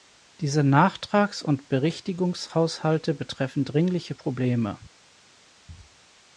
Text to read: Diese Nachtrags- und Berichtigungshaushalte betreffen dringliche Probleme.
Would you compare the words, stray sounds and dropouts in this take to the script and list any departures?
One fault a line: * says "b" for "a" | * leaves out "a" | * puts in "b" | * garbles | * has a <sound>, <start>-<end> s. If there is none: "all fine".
all fine